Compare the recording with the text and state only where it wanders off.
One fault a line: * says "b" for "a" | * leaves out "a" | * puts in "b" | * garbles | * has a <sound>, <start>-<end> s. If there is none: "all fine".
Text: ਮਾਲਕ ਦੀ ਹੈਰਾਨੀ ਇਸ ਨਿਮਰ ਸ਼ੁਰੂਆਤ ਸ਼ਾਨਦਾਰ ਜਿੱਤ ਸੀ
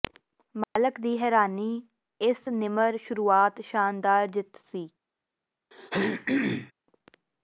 * has a dropout, 0.6-0.8 s
* has a throat clearing, 5.7-6.7 s